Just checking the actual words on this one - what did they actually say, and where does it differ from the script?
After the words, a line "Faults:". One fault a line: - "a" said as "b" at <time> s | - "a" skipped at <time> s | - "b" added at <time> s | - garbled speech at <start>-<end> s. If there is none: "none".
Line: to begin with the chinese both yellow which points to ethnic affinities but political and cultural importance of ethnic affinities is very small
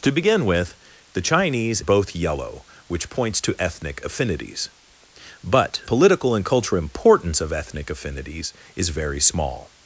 to begin with the chinese both yellow which points to ethnic affinities but political and cultural importance of ethnic affinities is very small
Faults:
none